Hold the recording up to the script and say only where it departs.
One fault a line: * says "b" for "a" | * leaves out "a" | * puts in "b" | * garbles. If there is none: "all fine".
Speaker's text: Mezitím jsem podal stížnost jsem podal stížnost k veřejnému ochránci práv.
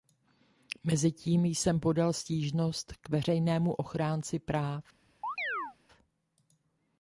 * leaves out "jsem podal stížnost"